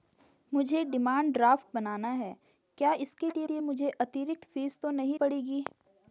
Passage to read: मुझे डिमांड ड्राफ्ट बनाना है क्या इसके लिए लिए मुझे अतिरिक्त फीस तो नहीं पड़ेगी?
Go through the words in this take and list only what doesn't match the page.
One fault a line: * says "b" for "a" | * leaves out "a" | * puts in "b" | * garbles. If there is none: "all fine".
all fine